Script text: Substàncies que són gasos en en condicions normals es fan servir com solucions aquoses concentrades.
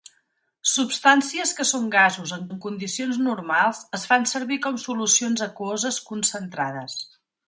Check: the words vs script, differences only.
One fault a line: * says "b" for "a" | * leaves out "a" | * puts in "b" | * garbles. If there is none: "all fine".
all fine